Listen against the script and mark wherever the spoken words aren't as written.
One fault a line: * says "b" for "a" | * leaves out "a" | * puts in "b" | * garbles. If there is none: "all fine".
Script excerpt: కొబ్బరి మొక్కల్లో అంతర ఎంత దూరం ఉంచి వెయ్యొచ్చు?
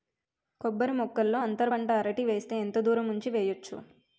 * puts in "పంట అరటి వేస్తే"